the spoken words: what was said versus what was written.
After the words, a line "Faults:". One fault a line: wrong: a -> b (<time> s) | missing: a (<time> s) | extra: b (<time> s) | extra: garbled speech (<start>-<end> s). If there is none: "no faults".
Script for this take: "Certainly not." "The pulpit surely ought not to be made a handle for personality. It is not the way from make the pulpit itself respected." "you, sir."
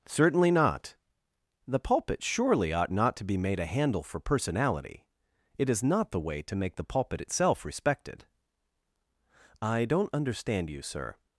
"Certainly not." "The pulpit surely ought not to be made a handle for personality. It is not the way to make the pulpit itself respected." "I don't understand you, sir."
Faults:
wrong: from -> to (6.4 s)
extra: I don't understand (9.6 s)